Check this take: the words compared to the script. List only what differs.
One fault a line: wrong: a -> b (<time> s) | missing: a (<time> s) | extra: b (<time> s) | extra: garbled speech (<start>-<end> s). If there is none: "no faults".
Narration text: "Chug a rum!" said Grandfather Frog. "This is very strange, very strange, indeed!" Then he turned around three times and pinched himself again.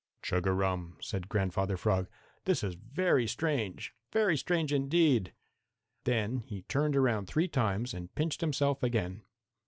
no faults